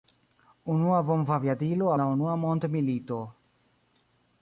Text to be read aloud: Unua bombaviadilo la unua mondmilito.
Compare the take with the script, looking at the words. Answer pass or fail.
pass